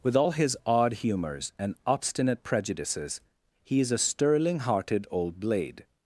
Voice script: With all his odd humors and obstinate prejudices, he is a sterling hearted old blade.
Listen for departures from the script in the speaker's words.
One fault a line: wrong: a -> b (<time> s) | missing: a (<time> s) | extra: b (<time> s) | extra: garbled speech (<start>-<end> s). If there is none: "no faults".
no faults